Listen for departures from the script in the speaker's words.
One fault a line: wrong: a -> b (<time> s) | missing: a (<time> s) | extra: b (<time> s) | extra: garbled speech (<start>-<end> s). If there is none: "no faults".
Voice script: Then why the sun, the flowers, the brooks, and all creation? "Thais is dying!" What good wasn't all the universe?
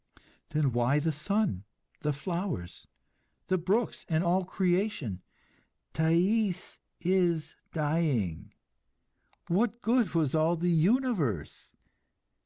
wrong: wasn't -> was (10.1 s)